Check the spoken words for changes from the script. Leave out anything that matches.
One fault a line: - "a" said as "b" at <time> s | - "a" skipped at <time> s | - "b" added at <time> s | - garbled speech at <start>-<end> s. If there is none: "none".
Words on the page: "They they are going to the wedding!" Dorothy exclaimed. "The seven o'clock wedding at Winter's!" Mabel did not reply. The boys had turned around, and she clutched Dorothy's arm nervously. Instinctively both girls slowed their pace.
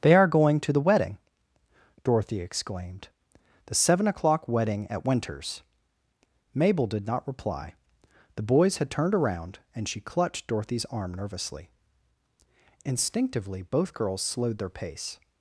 - "they" skipped at 0.1 s